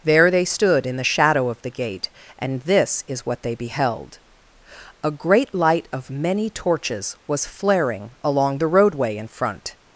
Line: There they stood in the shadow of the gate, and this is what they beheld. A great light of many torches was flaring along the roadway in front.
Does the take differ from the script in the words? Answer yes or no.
no